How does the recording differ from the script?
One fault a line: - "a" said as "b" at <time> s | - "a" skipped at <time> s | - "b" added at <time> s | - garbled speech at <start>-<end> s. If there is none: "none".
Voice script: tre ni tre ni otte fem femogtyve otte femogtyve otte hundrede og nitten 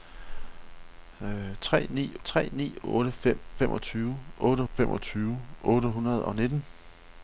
none